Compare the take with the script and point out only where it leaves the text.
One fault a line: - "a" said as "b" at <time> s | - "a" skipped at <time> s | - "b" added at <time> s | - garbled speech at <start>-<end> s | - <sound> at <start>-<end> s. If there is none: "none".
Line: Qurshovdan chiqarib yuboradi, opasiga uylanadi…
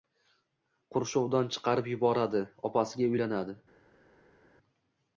none